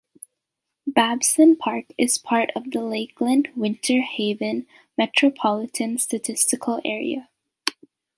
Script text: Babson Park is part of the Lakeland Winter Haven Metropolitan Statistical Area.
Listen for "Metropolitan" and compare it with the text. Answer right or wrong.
right